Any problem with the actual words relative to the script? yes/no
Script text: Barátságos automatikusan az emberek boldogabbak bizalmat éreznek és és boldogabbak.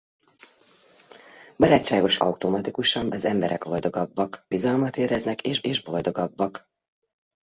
no